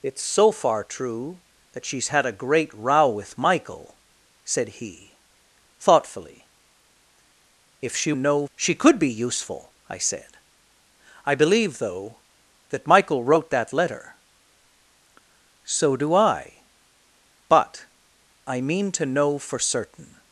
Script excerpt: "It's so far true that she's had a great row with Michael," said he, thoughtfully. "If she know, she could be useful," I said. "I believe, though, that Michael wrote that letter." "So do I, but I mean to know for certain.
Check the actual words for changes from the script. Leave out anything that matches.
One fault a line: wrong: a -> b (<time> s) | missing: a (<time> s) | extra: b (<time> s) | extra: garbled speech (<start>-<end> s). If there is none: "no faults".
no faults